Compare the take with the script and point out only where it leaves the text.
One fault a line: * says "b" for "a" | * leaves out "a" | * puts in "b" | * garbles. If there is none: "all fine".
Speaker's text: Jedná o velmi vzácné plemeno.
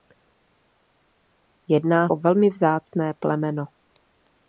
all fine